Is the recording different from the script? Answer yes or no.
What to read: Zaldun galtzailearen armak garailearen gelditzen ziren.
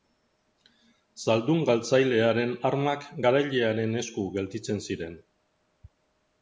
yes